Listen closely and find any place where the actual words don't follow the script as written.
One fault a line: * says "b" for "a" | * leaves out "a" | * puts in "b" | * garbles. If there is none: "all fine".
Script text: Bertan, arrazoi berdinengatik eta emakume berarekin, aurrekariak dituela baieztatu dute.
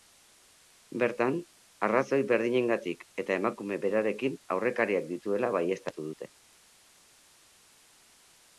all fine